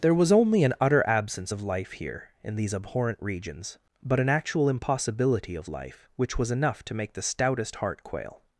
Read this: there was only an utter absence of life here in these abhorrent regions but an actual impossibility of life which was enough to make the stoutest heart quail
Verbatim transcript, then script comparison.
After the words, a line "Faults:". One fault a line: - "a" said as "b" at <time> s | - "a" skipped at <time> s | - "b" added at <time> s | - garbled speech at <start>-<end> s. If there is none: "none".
there was only an utter absence of life here in these abhorrent regions but an actual impossibility of life which was enough to make the stoutest heart quail
Faults:
none